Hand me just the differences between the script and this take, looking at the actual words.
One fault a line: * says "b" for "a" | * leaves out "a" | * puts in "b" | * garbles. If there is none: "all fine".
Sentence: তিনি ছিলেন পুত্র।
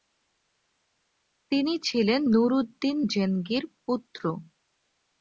* puts in "নুরউদ্দিন জেনগির"